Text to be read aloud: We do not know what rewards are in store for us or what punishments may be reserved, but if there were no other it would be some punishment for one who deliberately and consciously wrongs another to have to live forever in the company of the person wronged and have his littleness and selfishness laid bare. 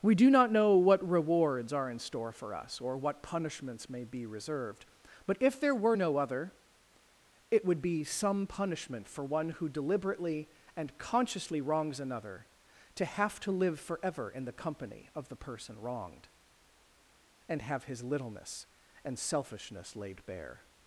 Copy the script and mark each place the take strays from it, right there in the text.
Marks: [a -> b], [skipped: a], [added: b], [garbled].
We do not know what rewards are in store for us or what punishments may be reserved, but if there were no other it would be some punishment for one who deliberately and consciously wrongs another to have to live forever in the company of the person wronged and have his littleness and selfishness laid bare.